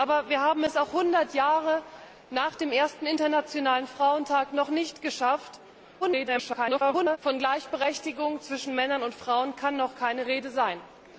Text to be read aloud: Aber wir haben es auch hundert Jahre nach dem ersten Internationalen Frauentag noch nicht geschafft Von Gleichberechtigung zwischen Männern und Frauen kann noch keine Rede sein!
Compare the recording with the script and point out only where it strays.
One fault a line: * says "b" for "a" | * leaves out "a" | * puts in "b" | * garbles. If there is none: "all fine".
* garbles